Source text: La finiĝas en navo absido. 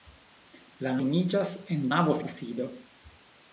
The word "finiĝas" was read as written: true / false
true